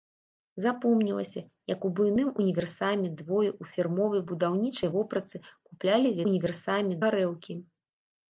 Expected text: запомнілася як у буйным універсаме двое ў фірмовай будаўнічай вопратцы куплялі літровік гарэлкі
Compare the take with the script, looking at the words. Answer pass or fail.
fail